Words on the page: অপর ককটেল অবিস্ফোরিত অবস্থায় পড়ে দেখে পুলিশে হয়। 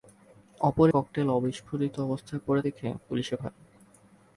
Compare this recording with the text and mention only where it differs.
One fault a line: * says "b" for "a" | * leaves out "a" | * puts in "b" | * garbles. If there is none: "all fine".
all fine